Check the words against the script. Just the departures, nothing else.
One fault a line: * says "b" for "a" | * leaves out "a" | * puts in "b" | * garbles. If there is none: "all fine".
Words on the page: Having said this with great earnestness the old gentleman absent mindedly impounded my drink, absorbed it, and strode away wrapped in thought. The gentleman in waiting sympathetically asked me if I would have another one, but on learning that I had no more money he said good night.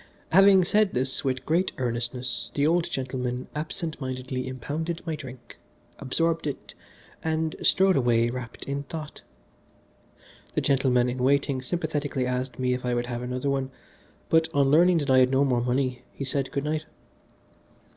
all fine